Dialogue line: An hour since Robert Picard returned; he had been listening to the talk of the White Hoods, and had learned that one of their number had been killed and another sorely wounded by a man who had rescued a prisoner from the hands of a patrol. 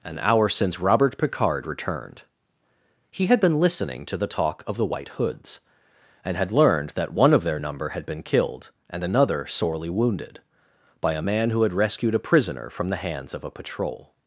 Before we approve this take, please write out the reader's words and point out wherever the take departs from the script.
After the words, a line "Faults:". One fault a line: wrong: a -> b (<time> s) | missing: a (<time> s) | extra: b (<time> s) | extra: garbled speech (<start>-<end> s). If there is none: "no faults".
An hour since Robert Picard returned; he had been listening to the talk of the White Hoods, and had learned that one of their number had been killed and another sorely wounded by a man who had rescued a prisoner from the hands of a patrol.
Faults:
no faults